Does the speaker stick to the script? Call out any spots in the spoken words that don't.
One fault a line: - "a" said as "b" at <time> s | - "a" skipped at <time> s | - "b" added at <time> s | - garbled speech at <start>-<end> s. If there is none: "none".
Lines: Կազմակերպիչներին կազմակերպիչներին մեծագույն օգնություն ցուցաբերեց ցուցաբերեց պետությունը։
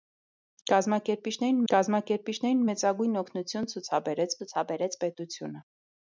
none